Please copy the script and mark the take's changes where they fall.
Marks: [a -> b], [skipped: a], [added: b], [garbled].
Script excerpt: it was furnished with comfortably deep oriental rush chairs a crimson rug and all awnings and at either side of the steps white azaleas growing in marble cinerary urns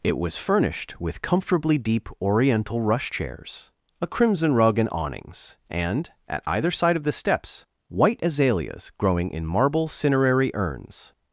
it was furnished with comfortably deep oriental rush chairs a crimson rug and [skipped: all] awnings and at either side of the steps white azaleas growing in marble cinerary urns